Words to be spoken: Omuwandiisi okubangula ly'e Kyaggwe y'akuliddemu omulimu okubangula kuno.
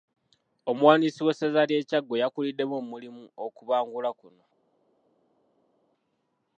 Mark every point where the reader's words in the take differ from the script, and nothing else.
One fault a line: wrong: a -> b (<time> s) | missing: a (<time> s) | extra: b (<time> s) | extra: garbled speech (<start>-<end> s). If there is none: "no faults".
wrong: okubangula -> w'essaza (1.2 s)